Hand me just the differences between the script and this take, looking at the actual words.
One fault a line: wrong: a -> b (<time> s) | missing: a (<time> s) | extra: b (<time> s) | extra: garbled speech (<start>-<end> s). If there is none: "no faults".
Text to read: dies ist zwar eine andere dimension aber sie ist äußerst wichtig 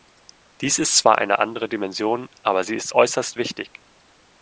no faults